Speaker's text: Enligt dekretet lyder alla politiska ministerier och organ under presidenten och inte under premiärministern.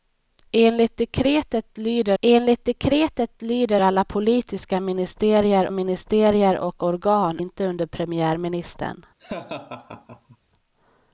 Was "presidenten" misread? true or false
true